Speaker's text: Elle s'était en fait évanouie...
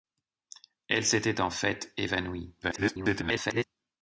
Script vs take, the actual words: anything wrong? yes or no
yes